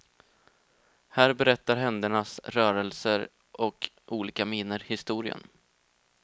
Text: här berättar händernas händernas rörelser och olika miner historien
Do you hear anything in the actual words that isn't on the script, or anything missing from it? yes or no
yes